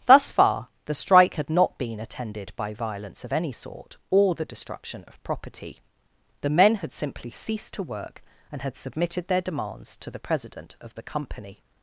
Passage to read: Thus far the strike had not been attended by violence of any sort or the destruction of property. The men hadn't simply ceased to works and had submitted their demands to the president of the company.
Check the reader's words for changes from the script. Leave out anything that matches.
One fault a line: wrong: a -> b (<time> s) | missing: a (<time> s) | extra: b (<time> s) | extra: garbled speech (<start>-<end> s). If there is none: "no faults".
wrong: hadn't -> had (6.7 s)
wrong: works -> work (7.8 s)